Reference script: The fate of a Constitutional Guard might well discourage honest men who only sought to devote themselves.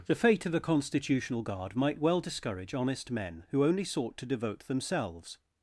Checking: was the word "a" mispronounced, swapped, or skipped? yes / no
no